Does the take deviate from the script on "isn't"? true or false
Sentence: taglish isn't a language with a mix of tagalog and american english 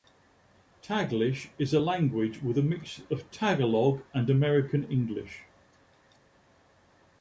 true